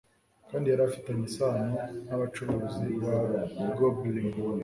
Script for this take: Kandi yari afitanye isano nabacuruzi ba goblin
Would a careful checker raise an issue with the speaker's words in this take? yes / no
no